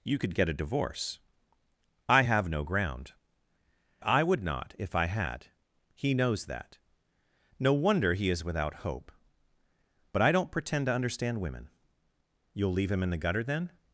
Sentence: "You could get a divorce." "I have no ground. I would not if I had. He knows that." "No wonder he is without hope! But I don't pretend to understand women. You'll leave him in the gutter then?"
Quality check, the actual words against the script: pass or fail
pass